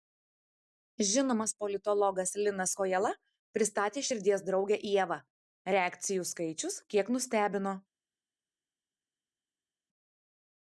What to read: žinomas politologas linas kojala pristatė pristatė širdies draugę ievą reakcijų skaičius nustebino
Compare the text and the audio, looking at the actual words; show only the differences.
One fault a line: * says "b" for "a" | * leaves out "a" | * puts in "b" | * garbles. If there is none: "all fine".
* leaves out "pristatė"
* puts in "kiek"